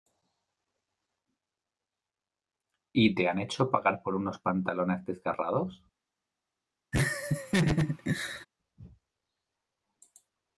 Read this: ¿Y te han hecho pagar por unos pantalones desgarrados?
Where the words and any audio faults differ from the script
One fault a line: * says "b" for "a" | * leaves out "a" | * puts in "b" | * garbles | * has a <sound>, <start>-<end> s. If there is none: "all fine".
* has a laugh, 6.9-8.5 s